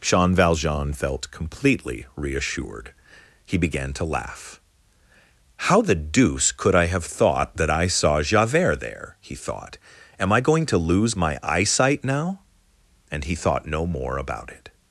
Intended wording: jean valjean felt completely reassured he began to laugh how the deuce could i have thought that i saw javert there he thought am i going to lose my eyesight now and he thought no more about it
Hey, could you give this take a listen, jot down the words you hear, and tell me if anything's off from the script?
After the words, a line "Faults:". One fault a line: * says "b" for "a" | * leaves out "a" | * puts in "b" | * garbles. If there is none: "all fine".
jean valjean felt completely reassured he began to laugh how the deuce could i have thought that i saw javert there he thought am i going to lose my eyesight now and he thought no more about it
Faults:
all fine